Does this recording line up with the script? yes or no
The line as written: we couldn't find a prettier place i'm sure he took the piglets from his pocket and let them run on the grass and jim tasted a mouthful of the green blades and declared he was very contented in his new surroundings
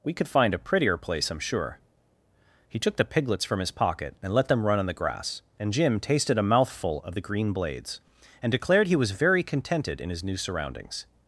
no